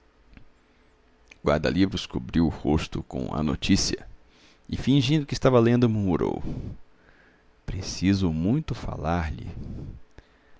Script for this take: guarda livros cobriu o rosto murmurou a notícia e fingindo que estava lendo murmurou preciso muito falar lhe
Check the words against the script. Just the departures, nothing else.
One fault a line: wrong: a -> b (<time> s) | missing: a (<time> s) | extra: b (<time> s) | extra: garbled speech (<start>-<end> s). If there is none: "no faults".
wrong: murmurou -> com (3.0 s)